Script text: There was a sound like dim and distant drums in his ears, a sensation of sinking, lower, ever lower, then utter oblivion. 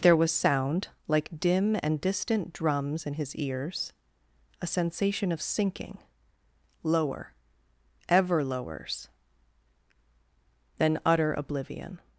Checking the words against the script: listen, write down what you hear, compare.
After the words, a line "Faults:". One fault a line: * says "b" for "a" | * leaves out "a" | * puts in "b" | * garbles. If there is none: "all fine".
There was sound like dim and distant drums in his ears, a sensation of sinking, lower, ever lowers, then utter oblivion.
Faults:
* leaves out "a"
* says "lowers" for "lower"